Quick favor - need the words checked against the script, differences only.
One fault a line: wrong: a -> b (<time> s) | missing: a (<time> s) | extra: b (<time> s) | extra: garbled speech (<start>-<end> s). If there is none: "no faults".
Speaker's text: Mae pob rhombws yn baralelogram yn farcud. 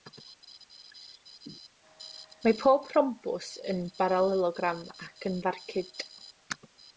extra: ac (5.1 s)